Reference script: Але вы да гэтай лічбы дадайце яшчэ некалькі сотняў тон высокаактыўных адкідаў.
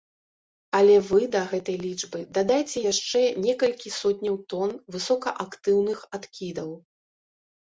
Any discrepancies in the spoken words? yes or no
no